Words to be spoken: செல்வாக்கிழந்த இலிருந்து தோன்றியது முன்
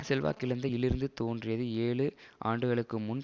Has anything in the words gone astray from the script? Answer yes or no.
yes